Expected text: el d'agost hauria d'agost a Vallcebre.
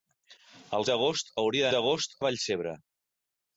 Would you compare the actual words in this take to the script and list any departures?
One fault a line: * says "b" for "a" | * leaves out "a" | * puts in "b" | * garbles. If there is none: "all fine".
all fine